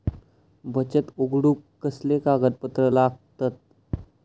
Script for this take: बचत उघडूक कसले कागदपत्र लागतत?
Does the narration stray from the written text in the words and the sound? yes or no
no